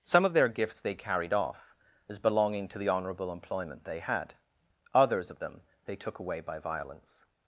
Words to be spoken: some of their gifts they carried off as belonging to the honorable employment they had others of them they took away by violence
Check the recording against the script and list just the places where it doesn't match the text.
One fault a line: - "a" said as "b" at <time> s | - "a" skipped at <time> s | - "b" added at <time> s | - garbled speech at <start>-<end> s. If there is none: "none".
none